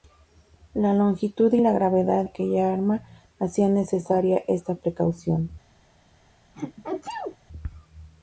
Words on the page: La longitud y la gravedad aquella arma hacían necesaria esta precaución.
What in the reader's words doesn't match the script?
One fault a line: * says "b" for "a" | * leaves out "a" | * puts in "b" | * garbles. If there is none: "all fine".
all fine